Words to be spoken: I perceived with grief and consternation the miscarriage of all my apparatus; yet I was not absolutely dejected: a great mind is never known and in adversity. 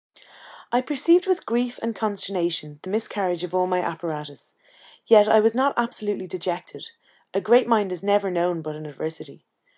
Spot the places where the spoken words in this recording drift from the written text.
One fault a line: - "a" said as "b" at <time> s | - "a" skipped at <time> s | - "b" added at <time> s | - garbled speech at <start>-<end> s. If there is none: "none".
- "and" said as "but" at 8.6 s